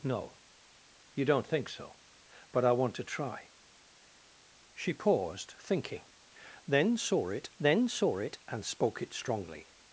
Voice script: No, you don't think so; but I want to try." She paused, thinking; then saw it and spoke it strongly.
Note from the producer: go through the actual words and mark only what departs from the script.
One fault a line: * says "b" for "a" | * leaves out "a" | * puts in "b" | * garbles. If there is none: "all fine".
* puts in "then saw it"